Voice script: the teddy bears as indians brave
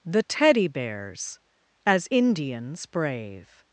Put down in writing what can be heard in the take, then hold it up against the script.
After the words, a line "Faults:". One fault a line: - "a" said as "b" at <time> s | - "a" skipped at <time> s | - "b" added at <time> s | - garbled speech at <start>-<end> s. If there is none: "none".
the teddy bears as indians brave
Faults:
none